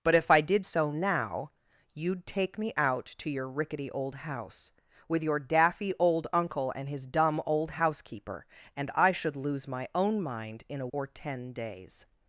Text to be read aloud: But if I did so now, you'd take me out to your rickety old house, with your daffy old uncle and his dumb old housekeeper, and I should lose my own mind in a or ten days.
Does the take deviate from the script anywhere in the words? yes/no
no